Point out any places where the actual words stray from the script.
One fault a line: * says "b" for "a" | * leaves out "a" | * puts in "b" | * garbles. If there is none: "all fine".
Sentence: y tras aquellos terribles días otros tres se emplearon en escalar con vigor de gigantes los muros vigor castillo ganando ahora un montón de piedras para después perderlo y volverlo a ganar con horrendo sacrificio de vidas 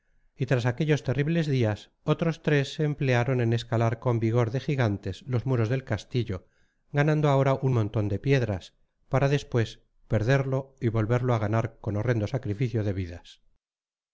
* says "del" for "vigor"